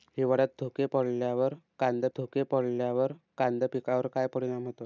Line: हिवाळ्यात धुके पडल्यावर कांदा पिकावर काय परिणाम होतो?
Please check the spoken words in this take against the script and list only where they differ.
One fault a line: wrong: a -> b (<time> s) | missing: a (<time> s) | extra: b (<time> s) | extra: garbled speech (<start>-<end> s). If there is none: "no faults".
extra: धुके पडल्यावर कांदा (2.2 s)